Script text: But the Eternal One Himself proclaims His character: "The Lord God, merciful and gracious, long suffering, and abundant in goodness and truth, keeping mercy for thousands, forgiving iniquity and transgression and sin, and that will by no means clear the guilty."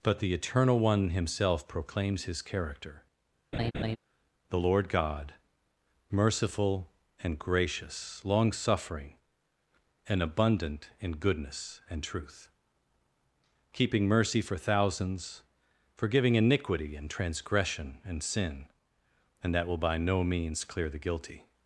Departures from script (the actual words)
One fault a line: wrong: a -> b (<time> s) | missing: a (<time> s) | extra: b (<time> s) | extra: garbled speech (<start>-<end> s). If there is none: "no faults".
no faults